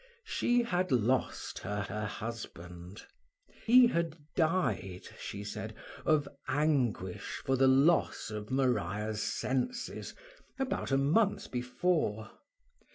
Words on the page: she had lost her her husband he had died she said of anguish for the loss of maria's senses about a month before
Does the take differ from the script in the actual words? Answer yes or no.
no